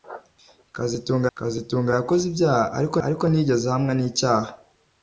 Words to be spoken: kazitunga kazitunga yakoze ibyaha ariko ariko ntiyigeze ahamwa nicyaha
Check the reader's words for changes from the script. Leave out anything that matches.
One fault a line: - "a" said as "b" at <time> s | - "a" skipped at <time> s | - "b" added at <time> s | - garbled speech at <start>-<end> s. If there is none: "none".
none